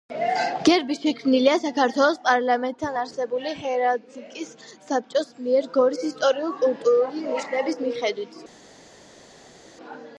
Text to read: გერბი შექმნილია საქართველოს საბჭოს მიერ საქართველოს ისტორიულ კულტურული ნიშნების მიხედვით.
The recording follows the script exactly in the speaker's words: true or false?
false